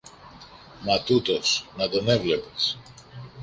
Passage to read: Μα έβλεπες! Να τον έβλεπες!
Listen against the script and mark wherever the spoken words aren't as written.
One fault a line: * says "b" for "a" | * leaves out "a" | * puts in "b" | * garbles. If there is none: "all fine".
* says "τούτος" for "έβλεπες"